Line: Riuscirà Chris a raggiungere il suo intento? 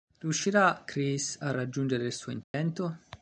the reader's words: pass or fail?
pass